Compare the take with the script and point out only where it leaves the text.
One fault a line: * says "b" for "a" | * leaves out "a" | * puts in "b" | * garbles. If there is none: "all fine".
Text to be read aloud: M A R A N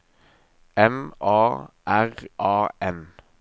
all fine